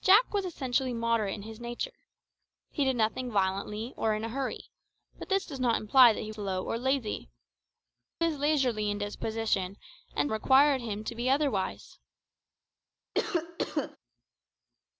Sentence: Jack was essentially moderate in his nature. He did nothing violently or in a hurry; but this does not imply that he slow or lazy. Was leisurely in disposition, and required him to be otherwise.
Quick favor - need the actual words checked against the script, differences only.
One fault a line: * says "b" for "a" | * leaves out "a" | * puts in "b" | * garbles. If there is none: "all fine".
all fine